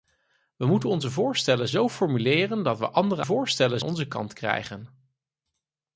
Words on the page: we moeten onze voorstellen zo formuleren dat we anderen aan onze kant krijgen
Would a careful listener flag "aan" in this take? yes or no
yes